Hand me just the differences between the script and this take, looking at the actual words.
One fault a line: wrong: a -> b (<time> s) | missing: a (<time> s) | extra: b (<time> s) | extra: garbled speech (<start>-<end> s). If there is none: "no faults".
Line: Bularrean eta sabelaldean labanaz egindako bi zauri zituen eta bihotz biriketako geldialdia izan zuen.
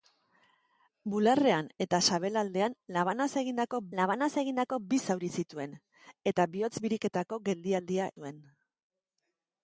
extra: labanaz egindako (4.0 s)
missing: izan (8.1 s)